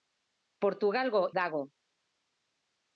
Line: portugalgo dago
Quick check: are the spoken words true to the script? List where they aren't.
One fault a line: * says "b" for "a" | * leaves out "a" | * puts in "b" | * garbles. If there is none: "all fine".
all fine